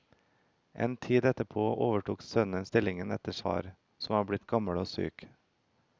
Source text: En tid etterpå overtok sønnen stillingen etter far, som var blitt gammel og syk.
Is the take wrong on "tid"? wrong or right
right